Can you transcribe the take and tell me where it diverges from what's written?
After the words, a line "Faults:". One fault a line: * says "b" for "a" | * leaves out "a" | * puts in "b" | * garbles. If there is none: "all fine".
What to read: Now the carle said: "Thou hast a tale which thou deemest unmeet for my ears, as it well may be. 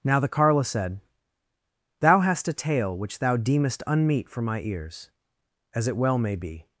Now the carle said: "Thou hast a tale which thou deemest unmeet for my ears, as it well may be.
Faults:
all fine